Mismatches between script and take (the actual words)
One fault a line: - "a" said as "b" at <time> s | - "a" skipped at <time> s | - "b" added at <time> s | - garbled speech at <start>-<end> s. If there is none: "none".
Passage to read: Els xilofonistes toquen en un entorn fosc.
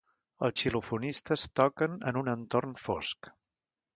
none